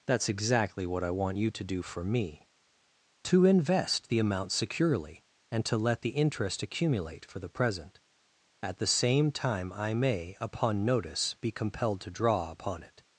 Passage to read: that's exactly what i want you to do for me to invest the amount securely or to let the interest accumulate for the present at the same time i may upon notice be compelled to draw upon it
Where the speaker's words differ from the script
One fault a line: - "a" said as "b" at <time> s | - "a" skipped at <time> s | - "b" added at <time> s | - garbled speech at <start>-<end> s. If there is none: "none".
- "or" said as "and" at 5.5 s